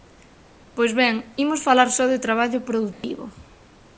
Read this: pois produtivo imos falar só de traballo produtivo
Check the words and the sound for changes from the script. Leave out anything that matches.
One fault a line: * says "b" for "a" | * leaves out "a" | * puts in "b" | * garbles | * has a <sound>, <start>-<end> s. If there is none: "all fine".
* says "ben" for "produtivo"
* has a dropout, 2.9-3.0 s